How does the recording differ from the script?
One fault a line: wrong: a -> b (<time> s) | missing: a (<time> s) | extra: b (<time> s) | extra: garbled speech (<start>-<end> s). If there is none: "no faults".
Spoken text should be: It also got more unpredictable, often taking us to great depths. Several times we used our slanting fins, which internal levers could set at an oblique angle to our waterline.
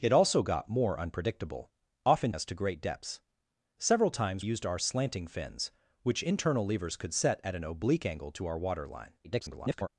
missing: taking (2.3 s)
missing: we (4.4 s)
extra: garbled speech (9.2-9.9 s)